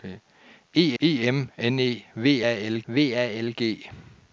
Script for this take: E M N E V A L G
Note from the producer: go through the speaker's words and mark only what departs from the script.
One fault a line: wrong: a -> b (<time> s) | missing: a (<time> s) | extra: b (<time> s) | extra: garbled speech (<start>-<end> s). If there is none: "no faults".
extra: e (1.0 s)
extra: V A L (2.9 s)